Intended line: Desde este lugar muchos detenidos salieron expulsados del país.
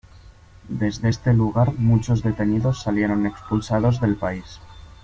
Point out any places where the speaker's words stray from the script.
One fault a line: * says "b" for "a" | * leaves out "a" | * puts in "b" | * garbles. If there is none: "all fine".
all fine